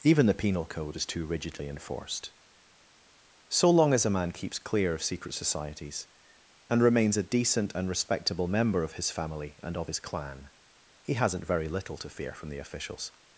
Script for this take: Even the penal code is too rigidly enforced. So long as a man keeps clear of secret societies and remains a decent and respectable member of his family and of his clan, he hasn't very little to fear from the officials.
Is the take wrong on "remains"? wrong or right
right